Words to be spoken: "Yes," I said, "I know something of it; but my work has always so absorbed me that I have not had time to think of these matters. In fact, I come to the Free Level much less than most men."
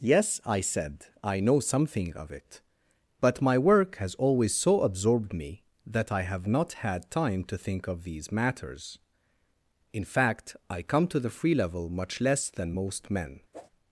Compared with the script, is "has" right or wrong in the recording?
right